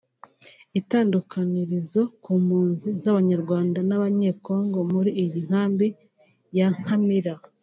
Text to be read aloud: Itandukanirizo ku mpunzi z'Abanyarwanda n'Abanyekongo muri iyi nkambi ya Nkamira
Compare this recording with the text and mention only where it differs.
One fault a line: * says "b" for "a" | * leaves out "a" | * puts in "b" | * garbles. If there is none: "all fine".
all fine